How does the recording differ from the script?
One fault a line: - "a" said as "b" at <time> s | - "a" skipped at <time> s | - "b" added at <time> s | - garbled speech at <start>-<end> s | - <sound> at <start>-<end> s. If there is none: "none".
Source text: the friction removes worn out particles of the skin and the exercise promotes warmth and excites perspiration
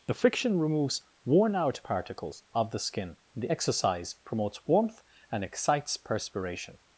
- "and" skipped at 3.2 s